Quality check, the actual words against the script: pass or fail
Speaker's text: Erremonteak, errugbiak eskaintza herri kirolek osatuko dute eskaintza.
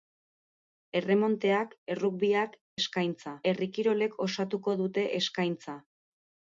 pass